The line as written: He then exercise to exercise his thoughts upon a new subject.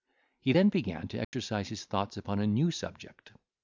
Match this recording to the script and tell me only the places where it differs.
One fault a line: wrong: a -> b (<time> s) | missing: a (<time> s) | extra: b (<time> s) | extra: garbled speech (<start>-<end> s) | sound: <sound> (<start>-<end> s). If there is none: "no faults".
wrong: exercise -> began (0.7 s)
sound: dropout (1.2-1.3 s)